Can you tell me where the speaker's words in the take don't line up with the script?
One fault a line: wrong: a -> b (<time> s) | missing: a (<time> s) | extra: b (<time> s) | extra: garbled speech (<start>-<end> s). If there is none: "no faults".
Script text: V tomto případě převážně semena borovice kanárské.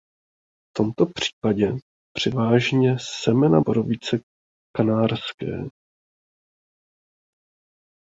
no faults